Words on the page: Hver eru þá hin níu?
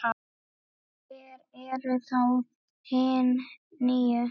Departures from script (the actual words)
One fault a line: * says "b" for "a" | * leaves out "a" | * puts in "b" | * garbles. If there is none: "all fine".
all fine